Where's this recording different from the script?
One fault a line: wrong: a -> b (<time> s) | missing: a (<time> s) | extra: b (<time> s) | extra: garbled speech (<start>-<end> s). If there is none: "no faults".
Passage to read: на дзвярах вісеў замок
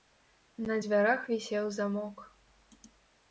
no faults